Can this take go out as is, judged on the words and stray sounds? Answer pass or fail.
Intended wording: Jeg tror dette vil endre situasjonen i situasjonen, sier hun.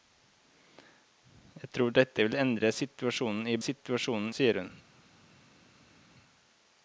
pass